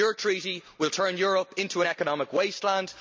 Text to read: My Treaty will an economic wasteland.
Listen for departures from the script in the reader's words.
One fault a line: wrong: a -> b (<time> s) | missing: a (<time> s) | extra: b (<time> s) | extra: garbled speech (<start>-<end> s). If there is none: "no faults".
wrong: My -> Your (0.0 s)
extra: turn Europe into (0.9 s)